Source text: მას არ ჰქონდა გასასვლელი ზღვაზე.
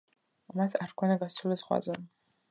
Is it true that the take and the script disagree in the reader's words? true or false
false